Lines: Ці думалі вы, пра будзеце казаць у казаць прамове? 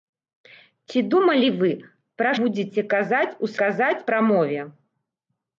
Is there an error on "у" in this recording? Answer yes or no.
no